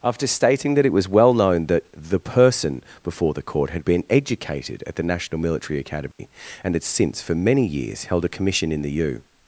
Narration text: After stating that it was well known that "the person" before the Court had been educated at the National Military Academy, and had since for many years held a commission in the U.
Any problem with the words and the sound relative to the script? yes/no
yes